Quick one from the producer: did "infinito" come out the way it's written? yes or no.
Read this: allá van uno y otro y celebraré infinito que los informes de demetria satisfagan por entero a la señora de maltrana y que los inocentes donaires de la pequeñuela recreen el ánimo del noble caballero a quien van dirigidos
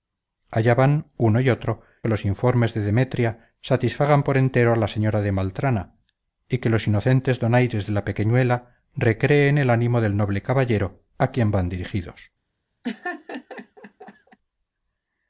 no